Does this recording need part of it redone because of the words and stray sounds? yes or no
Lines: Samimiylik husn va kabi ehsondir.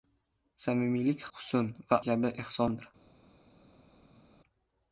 no